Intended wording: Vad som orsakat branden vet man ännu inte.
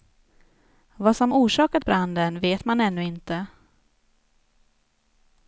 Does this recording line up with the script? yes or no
yes